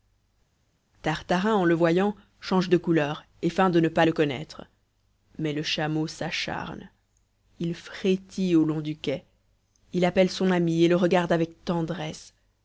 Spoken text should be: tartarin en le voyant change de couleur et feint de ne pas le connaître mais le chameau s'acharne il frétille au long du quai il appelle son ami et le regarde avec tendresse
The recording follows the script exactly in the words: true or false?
true